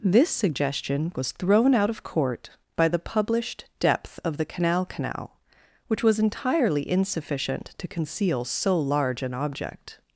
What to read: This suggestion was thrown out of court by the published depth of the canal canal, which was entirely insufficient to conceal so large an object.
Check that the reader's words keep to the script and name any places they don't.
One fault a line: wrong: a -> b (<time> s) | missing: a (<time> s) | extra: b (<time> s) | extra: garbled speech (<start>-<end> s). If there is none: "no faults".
no faults